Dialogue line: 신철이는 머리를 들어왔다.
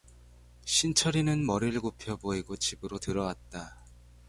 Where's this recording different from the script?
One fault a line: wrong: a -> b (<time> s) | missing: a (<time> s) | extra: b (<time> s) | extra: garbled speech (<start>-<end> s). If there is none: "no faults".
extra: 굽혀 보이고 집으로 (1.8 s)